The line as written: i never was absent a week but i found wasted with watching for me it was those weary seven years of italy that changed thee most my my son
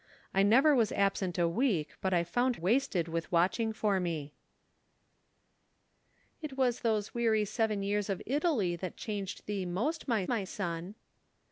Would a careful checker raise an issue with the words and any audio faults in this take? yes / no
no